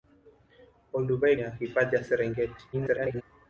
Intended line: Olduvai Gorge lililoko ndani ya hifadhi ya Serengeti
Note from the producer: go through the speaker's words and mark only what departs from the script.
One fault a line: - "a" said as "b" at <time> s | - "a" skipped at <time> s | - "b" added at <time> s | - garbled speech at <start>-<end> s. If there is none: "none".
- "Gorge lililoko ndani" skipped at 1.4 s
- garbled speech at 2.7-3.2 s